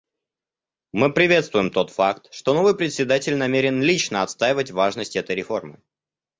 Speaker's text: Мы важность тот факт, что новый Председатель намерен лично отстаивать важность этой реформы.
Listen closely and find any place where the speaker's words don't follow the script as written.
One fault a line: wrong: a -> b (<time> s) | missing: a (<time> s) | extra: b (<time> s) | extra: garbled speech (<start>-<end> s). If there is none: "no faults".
wrong: важность -> приветствуем (1.1 s)